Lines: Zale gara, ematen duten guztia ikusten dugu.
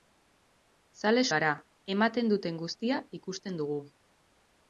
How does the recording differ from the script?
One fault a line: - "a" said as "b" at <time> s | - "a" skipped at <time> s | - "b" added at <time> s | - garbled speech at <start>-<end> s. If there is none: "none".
none